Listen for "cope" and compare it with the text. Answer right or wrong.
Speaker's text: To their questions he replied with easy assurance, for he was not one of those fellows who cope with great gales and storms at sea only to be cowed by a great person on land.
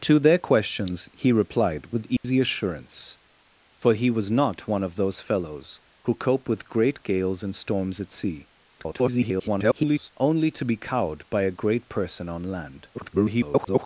right